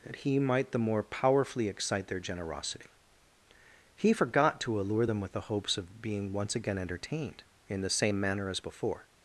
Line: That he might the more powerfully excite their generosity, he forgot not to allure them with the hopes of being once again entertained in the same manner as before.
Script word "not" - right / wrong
wrong